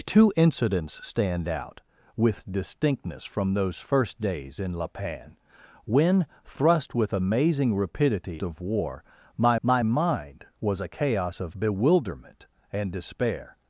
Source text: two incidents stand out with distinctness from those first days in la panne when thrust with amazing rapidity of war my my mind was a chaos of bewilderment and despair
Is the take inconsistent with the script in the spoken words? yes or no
no